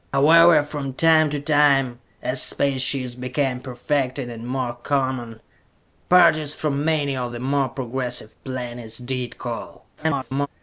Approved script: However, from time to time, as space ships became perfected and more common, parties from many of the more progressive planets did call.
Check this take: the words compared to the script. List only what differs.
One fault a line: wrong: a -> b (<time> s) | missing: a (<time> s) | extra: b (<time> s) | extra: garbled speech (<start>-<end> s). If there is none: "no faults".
extra: garbled speech (10.0-10.5 s)